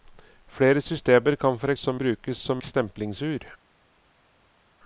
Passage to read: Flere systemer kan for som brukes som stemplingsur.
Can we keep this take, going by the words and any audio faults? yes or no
yes